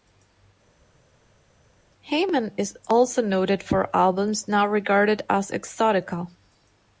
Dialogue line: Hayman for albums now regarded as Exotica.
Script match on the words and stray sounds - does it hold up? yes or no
no